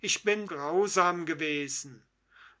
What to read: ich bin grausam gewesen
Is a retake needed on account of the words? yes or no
no